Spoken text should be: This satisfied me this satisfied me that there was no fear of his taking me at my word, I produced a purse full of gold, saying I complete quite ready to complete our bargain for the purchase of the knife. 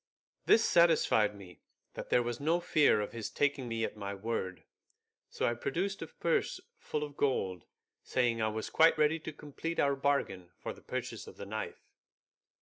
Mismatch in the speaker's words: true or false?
true